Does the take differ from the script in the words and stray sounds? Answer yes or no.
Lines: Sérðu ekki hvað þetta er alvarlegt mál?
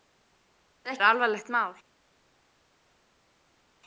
yes